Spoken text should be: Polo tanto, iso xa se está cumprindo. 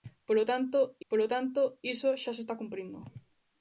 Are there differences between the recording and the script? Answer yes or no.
yes